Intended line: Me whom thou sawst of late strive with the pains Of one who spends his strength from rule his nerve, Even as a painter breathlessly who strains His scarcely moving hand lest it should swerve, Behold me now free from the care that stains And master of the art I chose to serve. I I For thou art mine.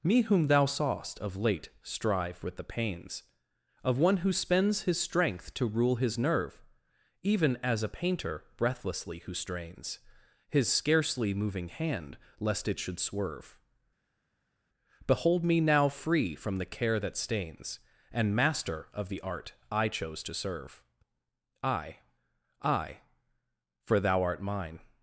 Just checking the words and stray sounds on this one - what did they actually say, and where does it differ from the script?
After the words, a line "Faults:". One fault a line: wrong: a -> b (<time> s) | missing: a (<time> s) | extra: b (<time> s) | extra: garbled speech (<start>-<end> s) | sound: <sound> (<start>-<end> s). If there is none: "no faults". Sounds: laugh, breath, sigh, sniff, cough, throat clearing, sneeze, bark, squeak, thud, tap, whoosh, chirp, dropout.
Me whom thou sawst of late strive with the pains Of one who spends his strength to rule his nerve, Even as a painter breathlessly who strains His scarcely moving hand lest it should swerve, Behold me now free from the care that stains And master of the art I chose to serve. I I For thou art mine.
Faults:
wrong: from -> to (5.5 s)